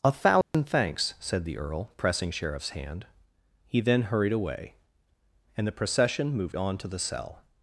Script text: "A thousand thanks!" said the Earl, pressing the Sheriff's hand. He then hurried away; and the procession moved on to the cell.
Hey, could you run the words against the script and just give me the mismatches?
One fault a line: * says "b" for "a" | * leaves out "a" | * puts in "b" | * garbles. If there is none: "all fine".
* leaves out "the"